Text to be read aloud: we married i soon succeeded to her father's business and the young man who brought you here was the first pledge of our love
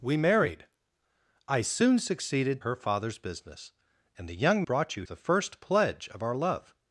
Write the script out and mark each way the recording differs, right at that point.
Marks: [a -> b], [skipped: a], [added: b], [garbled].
we married i soon succeeded [skipped: to] her father's business and the young [skipped: man who] brought you [skipped: here was] the first pledge of our love